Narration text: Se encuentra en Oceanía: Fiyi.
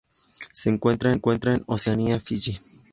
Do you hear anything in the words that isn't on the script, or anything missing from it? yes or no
yes